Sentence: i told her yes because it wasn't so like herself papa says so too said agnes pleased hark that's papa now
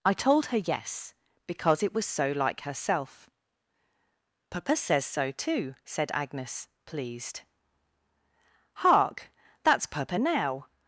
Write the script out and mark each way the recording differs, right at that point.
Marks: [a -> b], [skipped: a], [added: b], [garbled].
i told her yes because it [wasn't -> was] so like herself papa says so too said agnes pleased hark that's papa now